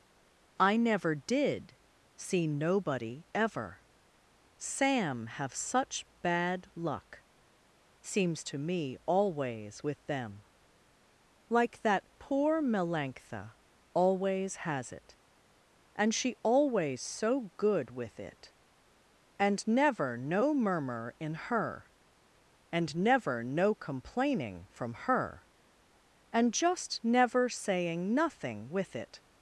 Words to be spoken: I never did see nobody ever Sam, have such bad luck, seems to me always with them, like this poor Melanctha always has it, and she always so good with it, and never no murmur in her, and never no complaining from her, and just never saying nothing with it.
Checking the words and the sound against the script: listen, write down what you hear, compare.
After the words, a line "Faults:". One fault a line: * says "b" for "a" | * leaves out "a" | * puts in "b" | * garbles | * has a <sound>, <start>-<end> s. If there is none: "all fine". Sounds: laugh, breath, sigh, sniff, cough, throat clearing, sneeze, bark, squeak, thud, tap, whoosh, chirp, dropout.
I never did see nobody ever Sam, have such bad luck, seems to me always with them, like that poor Melanctha always has it, and she always so good with it, and never no murmur in her, and never no complaining from her, and just never saying nothing with it.
Faults:
* says "that" for "this"